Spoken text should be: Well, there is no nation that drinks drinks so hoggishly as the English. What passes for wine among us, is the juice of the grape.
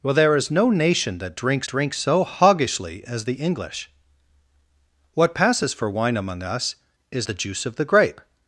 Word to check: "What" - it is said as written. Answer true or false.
true